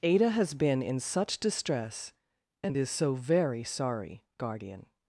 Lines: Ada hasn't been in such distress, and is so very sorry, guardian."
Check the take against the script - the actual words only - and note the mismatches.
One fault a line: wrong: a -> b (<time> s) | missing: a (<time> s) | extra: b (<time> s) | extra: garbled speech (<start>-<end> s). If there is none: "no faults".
wrong: hasn't -> has (0.3 s)